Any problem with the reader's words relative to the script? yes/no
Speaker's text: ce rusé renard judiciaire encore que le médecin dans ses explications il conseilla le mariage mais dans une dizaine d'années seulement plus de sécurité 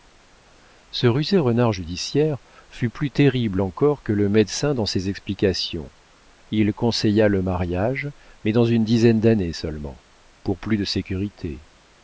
yes